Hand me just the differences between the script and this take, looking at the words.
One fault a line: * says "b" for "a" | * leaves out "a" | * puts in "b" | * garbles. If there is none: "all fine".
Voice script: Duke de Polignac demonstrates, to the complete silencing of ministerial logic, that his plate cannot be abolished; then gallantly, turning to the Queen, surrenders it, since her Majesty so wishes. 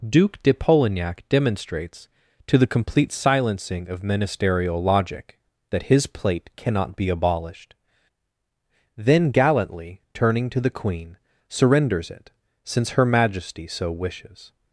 all fine